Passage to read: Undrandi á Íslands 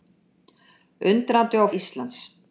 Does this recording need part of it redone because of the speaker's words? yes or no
no